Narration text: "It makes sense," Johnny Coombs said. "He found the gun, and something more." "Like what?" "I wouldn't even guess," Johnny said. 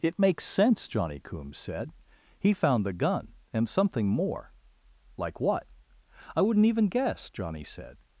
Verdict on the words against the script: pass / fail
pass